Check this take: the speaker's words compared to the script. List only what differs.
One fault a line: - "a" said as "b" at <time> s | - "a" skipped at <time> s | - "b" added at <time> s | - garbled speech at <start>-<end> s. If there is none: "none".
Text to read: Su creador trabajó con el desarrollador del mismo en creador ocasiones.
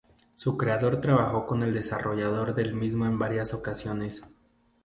- "creador" said as "varias" at 3.2 s